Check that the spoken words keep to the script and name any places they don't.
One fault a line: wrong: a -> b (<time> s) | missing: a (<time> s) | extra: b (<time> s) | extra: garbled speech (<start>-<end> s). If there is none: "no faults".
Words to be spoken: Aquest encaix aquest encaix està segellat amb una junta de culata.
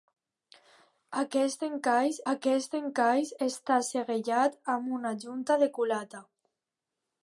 no faults